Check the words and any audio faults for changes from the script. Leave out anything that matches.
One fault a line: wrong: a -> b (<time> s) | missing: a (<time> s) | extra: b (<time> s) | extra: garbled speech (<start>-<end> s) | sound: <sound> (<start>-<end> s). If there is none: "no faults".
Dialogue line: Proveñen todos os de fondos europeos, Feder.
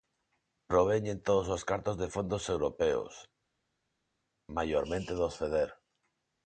extra: cartos (1.7 s)
extra: maiormente dos (4.6 s)